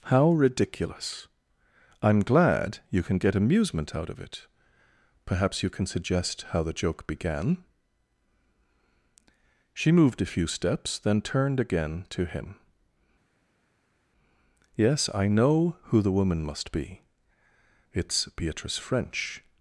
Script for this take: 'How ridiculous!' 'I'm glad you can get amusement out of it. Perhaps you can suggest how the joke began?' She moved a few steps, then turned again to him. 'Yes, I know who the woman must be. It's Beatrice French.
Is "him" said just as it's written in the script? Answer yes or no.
yes